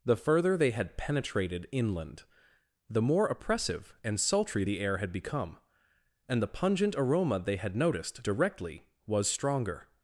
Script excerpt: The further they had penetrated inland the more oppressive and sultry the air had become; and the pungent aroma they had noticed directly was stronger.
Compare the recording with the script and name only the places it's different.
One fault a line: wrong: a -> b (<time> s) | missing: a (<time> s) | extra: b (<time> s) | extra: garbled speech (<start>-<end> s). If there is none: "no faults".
no faults